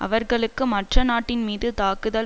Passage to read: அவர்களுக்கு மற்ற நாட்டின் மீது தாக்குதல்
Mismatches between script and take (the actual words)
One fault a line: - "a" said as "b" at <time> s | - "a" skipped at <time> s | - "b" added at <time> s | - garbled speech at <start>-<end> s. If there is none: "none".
none